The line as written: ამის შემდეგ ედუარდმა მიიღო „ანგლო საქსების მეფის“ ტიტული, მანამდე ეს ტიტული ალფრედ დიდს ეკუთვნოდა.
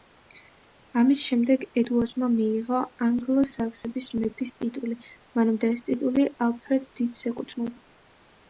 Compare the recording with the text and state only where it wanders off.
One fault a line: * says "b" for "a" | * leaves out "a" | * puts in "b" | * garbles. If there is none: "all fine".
all fine